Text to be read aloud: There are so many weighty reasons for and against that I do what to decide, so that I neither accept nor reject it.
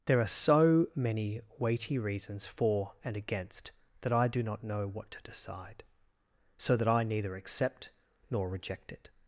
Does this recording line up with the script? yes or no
no